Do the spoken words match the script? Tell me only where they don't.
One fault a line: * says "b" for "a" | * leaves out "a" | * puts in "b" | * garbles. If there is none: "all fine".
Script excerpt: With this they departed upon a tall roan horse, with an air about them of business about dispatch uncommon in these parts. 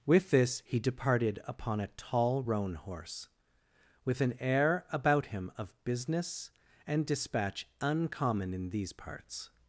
* says "he" for "they"
* says "him" for "them"
* says "and" for "about"